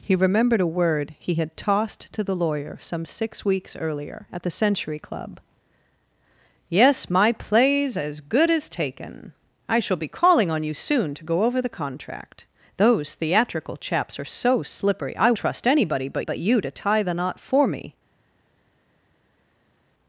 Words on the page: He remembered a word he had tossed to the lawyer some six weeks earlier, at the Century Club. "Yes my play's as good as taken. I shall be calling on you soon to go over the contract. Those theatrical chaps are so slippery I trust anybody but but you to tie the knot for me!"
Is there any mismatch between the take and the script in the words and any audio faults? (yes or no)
no